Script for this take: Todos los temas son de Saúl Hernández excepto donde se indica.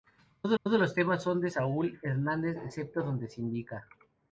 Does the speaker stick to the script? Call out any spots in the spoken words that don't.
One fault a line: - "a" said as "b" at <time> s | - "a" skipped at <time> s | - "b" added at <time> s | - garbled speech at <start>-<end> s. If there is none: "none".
- "todos" added at 0.6 s